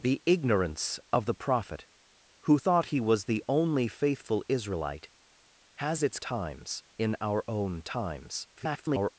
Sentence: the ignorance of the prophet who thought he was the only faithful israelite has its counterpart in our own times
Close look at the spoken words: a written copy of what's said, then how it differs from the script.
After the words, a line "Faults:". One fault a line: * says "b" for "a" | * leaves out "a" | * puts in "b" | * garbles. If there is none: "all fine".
the ignorance of the prophet who thought he was the only faithful israelite has its times in our own times [garbled]
Faults:
* says "times" for "counterpart"
* garbles